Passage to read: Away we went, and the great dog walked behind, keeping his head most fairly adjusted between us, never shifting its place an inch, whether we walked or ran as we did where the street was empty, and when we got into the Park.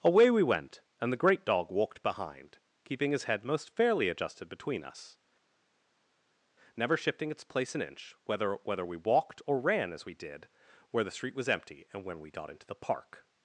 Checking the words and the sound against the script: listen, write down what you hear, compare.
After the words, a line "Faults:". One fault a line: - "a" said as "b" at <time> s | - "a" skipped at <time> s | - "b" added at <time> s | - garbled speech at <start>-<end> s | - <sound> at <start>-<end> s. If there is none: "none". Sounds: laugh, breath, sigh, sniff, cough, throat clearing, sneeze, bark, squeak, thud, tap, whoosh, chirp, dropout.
Away we went, and the great dog walked behind, keeping his head most fairly adjusted between us, never shifting its place an inch, whether whether we walked or ran as we did where the street was empty, and when we got into the Park.
Faults:
- "whether" added at 8.6 s